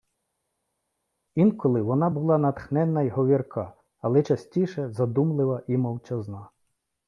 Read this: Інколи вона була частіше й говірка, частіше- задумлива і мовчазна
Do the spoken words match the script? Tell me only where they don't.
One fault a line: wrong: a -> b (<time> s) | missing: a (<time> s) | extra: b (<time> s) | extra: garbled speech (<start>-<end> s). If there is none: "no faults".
wrong: частіше -> натхненна (2.4 s)
extra: але (4.0 s)